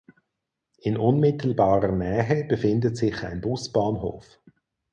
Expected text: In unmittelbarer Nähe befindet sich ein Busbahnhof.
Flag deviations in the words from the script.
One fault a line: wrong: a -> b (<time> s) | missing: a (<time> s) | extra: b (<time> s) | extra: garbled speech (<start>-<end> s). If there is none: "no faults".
no faults